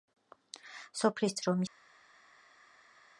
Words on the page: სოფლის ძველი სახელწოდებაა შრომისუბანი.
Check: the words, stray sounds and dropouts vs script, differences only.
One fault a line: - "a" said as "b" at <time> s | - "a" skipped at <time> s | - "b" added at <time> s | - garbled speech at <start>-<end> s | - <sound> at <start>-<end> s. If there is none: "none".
- "ძველი სახელწოდებაა" skipped at 1.4 s